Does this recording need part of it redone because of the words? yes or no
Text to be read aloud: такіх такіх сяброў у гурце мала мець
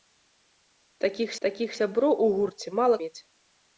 no